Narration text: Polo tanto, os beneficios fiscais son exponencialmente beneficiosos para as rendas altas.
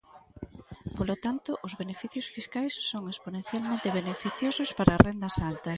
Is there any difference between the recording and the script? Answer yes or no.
no